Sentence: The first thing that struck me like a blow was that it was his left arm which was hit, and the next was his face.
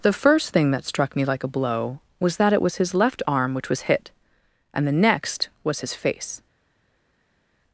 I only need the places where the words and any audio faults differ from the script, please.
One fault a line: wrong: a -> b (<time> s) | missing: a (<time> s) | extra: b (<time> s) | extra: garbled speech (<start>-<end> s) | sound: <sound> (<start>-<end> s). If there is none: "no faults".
no faults